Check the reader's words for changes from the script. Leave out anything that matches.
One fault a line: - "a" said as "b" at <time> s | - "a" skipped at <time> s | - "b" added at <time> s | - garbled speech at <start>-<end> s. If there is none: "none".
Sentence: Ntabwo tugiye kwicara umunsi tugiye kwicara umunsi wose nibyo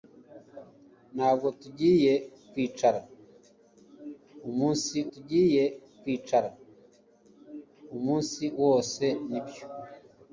none